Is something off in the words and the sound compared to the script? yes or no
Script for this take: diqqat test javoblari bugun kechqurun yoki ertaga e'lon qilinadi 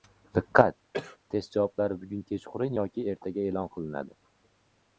yes